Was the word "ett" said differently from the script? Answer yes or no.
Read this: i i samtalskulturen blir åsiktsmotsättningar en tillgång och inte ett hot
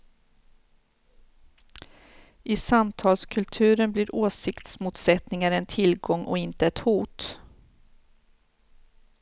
no